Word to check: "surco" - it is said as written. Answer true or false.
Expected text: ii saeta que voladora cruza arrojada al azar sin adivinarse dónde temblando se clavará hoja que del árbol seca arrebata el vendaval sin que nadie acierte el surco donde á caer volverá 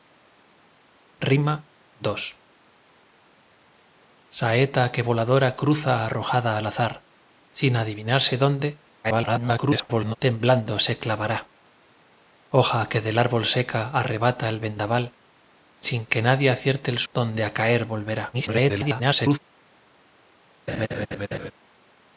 false